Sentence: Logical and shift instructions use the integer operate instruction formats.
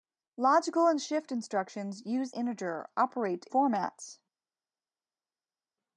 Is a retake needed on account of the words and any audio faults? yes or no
yes